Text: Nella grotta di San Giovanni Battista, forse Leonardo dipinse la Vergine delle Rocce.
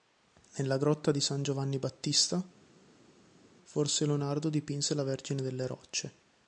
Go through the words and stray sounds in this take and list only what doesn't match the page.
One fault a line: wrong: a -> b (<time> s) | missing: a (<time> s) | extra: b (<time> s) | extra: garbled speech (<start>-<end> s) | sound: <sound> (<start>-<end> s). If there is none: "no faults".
no faults